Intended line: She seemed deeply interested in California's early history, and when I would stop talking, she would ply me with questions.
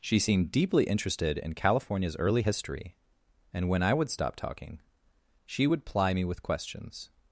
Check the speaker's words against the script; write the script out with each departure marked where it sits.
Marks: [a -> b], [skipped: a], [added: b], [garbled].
She seemed deeply interested in California's early history, and when I would stop talking, she would ply me with questions.